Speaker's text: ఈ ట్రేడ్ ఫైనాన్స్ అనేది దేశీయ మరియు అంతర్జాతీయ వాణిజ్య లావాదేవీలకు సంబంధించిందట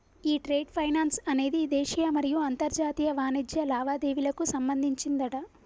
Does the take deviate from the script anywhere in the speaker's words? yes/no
no